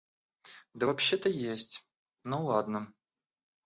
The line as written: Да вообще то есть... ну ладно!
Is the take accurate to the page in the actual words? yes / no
yes